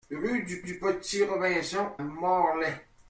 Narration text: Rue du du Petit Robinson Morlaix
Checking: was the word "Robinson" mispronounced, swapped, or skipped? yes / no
no